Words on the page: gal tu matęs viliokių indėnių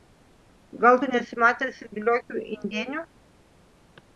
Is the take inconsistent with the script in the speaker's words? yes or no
yes